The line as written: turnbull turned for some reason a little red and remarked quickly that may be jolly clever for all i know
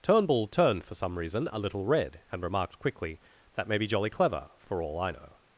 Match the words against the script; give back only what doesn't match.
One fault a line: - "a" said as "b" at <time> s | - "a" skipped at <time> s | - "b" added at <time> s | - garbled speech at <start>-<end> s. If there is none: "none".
none